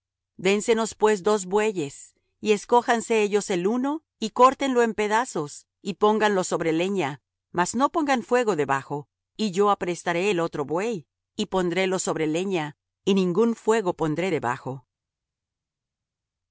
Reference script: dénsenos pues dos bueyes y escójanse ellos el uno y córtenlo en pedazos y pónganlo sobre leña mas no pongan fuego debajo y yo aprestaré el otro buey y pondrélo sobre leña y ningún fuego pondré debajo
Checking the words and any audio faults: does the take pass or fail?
pass